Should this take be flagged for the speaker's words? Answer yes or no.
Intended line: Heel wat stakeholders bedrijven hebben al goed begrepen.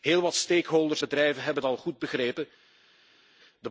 no